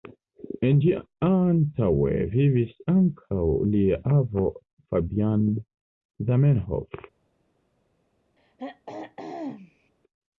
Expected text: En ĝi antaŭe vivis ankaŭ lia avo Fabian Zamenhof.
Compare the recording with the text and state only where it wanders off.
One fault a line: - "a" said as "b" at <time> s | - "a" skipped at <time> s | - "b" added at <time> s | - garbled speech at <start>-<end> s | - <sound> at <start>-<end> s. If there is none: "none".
- throat clearing at 8.4-9.9 s